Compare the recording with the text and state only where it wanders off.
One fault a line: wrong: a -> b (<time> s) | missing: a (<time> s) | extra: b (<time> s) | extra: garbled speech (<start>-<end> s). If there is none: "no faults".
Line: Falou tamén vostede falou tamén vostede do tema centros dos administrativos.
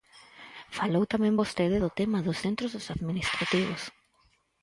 missing: falou tamén vostede (1.8 s)
extra: dos (2.3 s)